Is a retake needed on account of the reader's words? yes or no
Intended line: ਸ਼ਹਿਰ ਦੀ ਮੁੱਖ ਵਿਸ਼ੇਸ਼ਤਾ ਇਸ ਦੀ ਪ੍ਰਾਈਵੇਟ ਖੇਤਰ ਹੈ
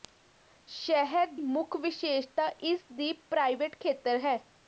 yes